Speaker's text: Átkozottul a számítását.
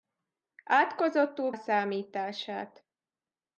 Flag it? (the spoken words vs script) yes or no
no